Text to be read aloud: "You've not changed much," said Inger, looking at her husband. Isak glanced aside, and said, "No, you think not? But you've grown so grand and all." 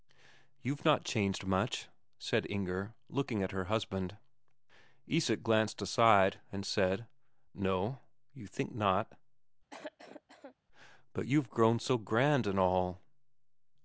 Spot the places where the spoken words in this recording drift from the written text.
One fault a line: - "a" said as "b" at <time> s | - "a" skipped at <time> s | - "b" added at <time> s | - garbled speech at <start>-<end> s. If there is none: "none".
none